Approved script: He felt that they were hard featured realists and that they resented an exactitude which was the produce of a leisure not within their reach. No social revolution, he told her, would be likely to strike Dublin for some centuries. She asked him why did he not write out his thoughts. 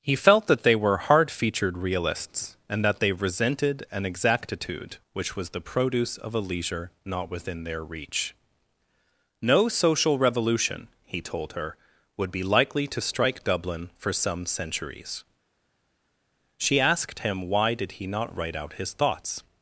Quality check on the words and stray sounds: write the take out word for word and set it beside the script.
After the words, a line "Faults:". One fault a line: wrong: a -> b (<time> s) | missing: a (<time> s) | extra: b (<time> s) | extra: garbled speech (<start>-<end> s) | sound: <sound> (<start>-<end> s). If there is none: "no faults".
He felt that they were hard featured realists and that they resented an exactitude which was the produce of a leisure not within their reach. No social revolution, he told her, would be likely to strike Dublin for some centuries. She asked him why did he not write out his thoughts.
Faults:
no faults